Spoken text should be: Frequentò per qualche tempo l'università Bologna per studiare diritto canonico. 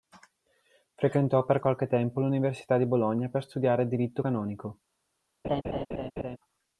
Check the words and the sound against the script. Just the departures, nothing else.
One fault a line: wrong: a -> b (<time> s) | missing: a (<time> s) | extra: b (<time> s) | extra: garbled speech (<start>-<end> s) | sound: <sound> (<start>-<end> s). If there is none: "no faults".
extra: di (2.8 s)
sound: laugh (5.4-6.4 s)